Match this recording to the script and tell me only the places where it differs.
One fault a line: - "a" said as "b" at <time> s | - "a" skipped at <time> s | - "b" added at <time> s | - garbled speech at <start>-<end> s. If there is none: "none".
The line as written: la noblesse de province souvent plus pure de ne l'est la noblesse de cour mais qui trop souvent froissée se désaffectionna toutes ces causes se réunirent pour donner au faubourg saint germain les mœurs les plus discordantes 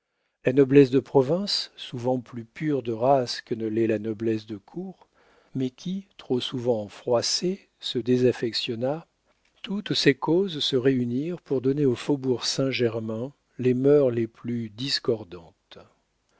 - "race que" added at 2.9 s